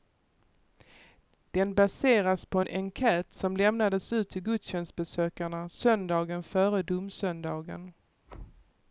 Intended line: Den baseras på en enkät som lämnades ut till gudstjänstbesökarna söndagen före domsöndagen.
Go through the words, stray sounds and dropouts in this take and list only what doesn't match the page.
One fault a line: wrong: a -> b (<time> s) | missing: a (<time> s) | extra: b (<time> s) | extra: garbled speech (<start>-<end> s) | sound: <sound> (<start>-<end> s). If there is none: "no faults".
sound: thud (8.3-8.7 s)